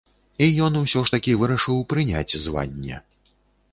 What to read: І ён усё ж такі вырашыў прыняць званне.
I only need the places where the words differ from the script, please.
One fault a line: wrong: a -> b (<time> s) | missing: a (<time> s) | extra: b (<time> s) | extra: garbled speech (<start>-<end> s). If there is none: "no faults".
no faults